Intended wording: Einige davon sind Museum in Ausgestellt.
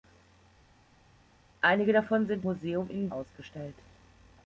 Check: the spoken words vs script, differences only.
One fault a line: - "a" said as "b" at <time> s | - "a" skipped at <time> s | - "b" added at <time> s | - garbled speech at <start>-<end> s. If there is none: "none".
none